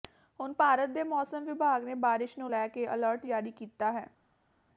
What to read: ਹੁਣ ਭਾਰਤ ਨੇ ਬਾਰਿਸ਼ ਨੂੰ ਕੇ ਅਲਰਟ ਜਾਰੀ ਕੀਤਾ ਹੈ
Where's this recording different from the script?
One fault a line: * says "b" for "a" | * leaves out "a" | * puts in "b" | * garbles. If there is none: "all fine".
* puts in "ਦੇ ਮੌਸਮ ਵਿਭਾਗ"
* puts in "ਲੈ"